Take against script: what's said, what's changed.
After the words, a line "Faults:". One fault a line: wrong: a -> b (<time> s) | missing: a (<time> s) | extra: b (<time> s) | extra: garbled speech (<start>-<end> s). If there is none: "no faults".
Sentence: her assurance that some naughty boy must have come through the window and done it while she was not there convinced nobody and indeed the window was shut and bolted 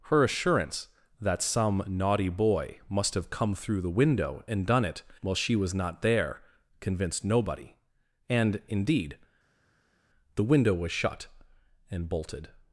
her assurance that some naughty boy must have come through the window and done it while she was not there convinced nobody and indeed the window was shut and bolted
Faults:
no faults